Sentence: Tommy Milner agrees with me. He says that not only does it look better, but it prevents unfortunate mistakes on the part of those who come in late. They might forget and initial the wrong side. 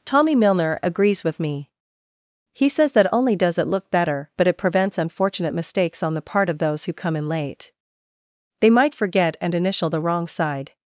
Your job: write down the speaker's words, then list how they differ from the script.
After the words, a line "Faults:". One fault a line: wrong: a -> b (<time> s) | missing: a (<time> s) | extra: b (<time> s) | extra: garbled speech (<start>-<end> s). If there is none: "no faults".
Tommy Milner agrees with me. He says that only does it look better, but it prevents unfortunate mistakes on the part of those who come in late. They might forget and initial the wrong side.
Faults:
missing: not (3.1 s)